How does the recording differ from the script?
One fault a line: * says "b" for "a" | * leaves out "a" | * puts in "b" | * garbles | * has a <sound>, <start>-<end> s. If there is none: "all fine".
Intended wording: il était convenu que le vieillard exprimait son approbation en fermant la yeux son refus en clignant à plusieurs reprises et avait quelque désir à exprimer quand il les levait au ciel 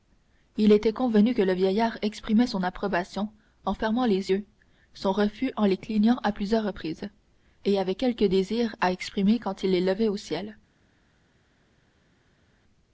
* says "les" for "la"
* puts in "les"